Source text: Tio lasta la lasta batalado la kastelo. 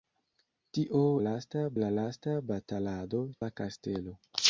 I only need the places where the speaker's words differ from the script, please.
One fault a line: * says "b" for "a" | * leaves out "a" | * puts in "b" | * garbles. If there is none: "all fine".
all fine